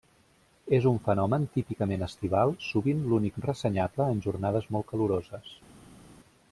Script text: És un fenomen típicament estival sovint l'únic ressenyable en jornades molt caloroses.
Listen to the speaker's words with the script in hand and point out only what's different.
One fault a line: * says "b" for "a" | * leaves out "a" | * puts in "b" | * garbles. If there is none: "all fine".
all fine